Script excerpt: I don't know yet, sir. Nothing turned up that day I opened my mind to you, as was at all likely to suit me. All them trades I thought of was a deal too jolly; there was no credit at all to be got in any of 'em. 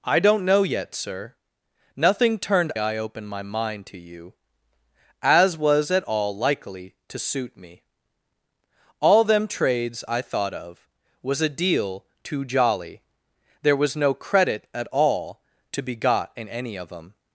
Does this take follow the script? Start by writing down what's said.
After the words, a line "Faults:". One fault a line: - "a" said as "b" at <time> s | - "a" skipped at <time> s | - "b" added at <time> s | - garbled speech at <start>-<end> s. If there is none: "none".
I don't know yet, sir. Nothing turned I opened my mind to you, as was at all likely to suit me. All them trades I thought of was a deal too jolly; there was no credit at all to be got in any of 'em.
Faults:
- "up that day" skipped at 2.7 s